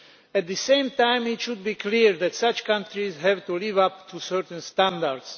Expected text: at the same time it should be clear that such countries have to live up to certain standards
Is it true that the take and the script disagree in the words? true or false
false